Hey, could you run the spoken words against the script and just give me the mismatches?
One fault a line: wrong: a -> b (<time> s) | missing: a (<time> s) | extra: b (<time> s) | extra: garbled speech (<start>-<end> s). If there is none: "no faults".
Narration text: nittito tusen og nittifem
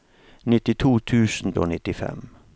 no faults